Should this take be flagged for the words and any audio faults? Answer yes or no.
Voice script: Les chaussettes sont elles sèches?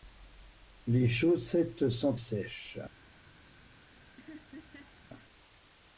yes